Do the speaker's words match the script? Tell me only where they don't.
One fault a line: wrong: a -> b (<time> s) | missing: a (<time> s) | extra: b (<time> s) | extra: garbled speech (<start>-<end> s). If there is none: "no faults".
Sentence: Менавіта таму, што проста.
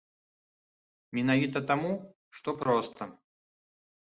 no faults